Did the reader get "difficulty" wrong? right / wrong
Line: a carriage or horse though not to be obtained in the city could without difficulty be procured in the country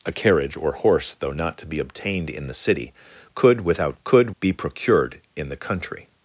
wrong